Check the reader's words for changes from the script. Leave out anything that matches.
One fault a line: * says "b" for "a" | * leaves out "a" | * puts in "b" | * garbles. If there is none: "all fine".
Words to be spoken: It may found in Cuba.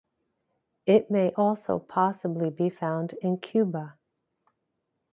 * puts in "also possibly be"